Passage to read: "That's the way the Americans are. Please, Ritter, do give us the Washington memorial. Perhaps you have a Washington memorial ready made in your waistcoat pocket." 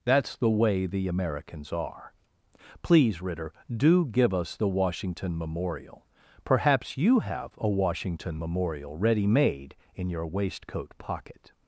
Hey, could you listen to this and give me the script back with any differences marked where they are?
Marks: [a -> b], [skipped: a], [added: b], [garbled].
"That's the way the Americans are. Please, Ritter, do give us the Washington memorial. Perhaps you have a Washington memorial ready made in your waistcoat pocket."